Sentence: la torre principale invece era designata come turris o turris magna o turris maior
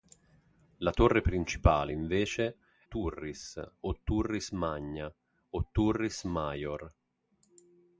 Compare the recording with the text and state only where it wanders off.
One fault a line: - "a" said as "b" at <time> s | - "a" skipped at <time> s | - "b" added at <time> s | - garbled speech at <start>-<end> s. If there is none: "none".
- "era designata come" skipped at 2.6 s